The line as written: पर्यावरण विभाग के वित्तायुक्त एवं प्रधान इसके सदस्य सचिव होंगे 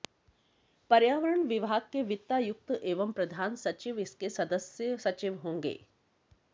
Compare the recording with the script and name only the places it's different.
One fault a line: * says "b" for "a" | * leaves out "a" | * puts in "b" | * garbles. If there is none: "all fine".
* puts in "सचिव"